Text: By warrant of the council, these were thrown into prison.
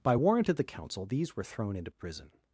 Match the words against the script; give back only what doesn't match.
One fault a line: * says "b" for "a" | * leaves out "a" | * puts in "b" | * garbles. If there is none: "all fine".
all fine